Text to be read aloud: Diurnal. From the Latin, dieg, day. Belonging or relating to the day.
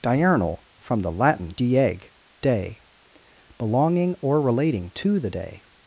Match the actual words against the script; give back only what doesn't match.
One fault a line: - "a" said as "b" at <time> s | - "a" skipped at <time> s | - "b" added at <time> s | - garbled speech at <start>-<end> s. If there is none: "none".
none